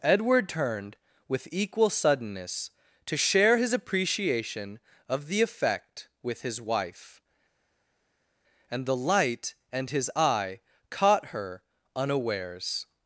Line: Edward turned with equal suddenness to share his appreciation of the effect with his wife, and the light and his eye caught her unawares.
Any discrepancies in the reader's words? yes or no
no